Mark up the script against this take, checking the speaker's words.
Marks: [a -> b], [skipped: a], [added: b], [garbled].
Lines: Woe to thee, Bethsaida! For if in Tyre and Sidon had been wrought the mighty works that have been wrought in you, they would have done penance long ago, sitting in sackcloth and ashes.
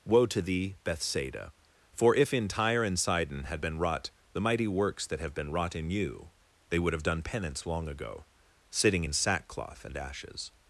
Woe to thee, Bethsaida! For if in Tyre and Sidon had been wrought the mighty works that have been wrought in you, they would have done penance long ago, sitting in sackcloth and ashes.